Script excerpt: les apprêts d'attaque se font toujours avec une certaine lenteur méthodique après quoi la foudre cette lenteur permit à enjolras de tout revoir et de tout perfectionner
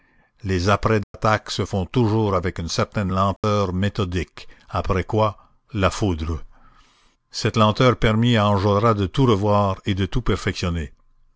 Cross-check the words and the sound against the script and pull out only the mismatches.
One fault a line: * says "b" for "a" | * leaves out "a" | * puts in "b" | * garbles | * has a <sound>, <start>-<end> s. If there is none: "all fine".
* has a dropout, 1.0-1.1 s
* has a dropout, 3.4-3.4 s